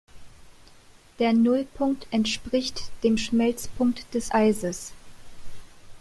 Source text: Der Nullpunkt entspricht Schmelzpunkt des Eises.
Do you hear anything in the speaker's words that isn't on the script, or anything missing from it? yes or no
yes